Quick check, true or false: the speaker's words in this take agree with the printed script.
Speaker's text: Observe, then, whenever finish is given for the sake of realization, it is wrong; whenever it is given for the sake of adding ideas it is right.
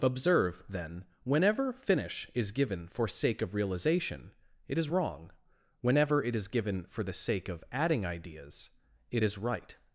false